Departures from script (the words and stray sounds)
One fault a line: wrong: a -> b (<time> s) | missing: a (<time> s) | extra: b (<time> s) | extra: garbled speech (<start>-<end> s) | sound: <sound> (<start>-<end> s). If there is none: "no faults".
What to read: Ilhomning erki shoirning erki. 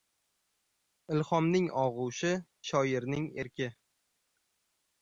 wrong: erki -> og‘ushi (1.8 s)